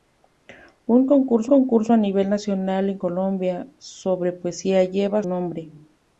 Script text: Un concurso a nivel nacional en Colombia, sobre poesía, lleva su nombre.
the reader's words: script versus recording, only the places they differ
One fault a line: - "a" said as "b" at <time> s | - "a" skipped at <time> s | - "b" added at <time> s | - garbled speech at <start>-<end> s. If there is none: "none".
- "concurso" added at 1.5 s
- "su" skipped at 5.2 s